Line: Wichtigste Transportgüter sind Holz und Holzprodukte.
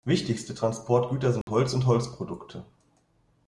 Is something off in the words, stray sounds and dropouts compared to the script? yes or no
yes